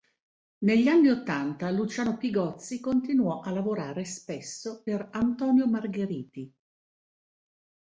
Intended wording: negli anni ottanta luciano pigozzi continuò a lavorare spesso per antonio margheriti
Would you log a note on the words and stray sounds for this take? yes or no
no